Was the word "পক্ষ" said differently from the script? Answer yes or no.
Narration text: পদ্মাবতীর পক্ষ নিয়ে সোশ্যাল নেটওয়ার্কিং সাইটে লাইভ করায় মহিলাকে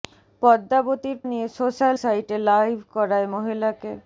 yes